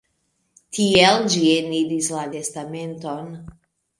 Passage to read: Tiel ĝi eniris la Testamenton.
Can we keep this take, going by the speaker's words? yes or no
yes